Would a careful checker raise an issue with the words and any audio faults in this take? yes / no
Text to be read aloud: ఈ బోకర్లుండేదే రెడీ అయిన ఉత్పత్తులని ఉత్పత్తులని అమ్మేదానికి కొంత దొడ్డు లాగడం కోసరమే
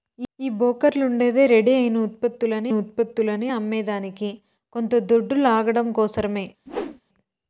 yes